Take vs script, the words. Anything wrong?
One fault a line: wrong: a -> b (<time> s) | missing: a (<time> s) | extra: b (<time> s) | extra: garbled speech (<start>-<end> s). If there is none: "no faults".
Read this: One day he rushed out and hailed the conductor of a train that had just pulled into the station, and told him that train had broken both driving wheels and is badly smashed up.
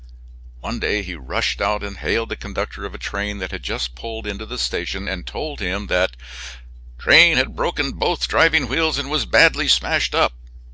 wrong: is -> was (9.1 s)